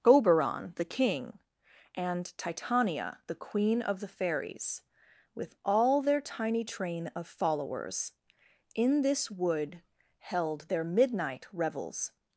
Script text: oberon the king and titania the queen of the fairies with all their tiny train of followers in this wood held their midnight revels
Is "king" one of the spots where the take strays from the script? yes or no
no